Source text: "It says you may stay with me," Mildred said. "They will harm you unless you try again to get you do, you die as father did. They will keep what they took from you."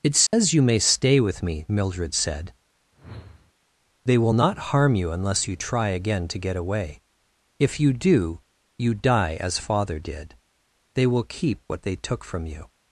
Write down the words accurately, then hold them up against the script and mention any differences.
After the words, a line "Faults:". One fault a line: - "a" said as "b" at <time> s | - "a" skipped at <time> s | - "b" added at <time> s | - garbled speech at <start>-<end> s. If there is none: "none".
"It says you may stay with me," Mildred said. "They will not harm you unless you try again to get away. If you do, you die as father did. They will keep what they took from you."
Faults:
- "not" added at 4.3 s
- "away If" added at 6.6 s